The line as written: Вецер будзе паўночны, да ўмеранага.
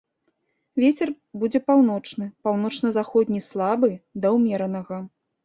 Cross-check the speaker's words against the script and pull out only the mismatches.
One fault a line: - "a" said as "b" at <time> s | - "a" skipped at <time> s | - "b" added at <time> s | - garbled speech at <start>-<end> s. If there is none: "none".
- "паўночна заходні слабы" added at 2.5 s